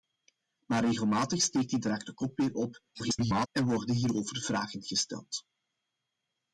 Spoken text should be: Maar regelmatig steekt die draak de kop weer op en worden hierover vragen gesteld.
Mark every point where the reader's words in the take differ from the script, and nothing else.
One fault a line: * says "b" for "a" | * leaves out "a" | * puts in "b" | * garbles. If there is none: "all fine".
* garbles